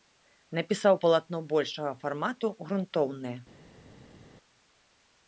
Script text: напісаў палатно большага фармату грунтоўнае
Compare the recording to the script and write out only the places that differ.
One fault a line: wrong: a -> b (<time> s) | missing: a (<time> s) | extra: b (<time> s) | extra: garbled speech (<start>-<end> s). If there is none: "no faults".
no faults